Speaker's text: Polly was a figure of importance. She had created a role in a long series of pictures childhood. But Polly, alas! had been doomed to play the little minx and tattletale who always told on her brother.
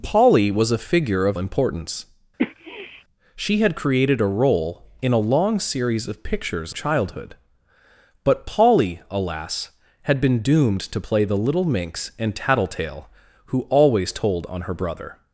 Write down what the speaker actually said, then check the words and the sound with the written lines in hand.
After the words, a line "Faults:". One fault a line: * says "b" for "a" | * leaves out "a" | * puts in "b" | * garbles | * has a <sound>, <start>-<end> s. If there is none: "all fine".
Polly was a figure of importance. She had created a role in a long series of pictures childhood. But Polly, alas! had been doomed to play the little minx and tattletale who always told on her brother.
Faults:
* has a sniff, 2.4-3.0 s